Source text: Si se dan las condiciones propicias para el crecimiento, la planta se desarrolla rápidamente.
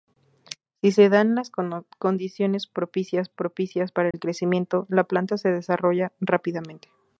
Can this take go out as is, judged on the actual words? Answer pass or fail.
fail